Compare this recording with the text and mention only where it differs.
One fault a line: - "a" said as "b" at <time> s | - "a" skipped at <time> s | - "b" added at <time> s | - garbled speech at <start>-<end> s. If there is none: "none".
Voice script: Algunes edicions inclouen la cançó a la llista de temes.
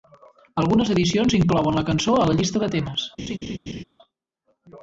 none